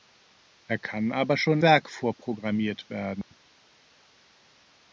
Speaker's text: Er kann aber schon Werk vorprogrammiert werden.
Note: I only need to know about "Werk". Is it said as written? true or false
true